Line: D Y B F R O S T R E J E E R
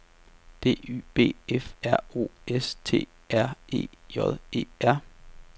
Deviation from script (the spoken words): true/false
true